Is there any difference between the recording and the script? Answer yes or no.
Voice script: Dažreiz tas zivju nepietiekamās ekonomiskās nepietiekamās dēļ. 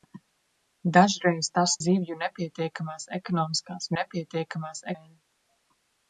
no